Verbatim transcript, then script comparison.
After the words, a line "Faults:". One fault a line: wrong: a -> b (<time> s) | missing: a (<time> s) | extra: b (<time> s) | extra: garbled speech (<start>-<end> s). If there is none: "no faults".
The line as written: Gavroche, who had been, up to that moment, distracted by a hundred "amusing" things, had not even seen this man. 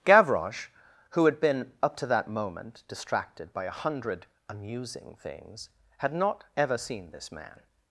Gavroche, who had been, up to that moment, distracted by a hundred "amusing" things, had not ever seen this man.
Faults:
wrong: even -> ever (6.6 s)